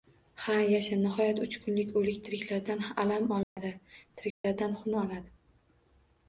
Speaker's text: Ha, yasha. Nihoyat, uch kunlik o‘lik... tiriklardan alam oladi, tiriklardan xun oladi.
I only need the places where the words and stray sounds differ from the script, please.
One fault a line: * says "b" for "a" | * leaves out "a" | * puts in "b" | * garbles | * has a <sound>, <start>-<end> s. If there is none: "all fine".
* has a dropout, 3.4-3.6 s
* has a dropout, 4.3-4.4 s